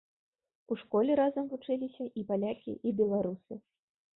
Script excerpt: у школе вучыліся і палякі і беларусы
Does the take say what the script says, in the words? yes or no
no